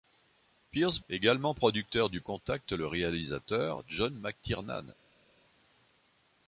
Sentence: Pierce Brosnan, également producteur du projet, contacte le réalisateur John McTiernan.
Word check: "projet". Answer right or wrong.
wrong